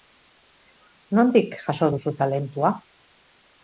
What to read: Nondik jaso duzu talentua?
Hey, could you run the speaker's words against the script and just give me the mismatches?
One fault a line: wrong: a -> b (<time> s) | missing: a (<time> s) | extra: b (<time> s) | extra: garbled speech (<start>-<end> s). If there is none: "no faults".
no faults